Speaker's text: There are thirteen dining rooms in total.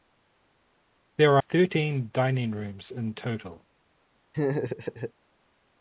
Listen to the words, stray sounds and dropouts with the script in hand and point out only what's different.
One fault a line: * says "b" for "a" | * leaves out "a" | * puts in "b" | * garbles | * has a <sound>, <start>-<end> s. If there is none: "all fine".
* leaves out "are"
* has a laugh, 4.3-5.1 s